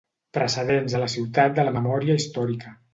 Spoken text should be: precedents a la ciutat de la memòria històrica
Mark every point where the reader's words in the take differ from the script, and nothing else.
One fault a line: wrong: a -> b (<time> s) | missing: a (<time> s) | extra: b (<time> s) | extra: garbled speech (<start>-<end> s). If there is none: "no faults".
no faults